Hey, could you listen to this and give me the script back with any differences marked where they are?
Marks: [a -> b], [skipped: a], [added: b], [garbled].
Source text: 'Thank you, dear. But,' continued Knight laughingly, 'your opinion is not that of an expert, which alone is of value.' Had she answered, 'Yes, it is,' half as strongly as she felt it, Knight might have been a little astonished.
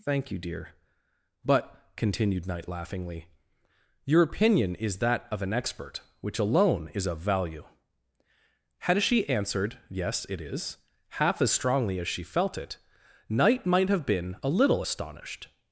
'Thank you, dear. But,' continued Knight laughingly, 'your opinion is [skipped: not] that of an expert, which alone is of value.' Had she answered, 'Yes, it is,' half as strongly as she felt it, Knight might have been a little astonished.